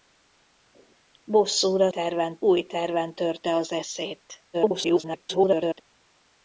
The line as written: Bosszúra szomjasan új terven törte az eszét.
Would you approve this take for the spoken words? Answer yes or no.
no